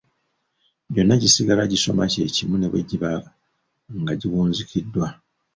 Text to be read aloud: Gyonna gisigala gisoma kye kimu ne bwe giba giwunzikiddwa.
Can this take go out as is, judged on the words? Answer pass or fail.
fail